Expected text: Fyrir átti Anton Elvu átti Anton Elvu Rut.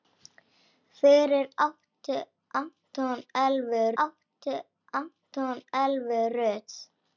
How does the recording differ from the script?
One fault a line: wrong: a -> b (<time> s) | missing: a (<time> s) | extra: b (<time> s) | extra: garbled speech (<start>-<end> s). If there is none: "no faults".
no faults